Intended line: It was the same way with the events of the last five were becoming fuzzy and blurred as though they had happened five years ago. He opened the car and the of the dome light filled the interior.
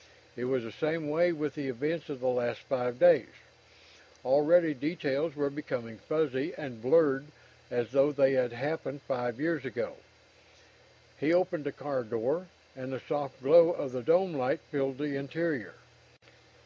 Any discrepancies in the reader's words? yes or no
yes